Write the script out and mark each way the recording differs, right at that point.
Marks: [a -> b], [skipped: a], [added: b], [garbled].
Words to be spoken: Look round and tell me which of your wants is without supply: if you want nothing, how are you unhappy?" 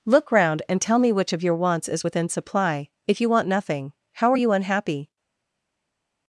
Look round and tell me which of your wants is [without -> within] supply: if you want nothing, how are you unhappy?"